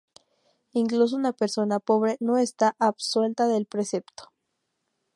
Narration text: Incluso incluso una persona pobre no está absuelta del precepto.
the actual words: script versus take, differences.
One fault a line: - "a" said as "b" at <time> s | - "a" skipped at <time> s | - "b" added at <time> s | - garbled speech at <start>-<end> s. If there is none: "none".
- "incluso" skipped at 1.1 s